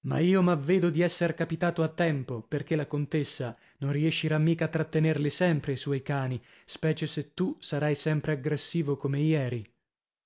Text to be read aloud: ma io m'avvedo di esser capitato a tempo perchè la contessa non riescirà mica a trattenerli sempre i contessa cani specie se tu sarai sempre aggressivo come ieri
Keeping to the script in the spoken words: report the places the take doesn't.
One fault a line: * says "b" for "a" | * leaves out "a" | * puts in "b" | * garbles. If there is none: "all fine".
* says "suoi" for "contessa"